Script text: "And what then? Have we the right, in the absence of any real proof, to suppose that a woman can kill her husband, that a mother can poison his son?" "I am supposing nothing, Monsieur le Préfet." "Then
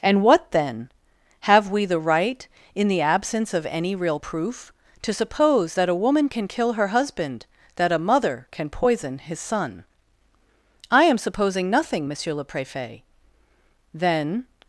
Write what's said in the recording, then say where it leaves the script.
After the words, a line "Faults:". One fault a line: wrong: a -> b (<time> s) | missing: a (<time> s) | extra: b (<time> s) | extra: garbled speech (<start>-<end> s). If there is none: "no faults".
"And what then? Have we the right, in the absence of any real proof, to suppose that a woman can kill her husband, that a mother can poison his son?" "I am supposing nothing, Monsieur le Préfet." "Then
Faults:
no faults